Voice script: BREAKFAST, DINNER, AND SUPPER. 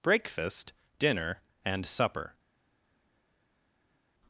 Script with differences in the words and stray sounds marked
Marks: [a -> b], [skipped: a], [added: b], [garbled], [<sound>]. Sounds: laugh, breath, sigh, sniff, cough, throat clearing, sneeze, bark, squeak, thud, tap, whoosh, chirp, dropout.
BREAKFAST, DINNER, AND SUPPER.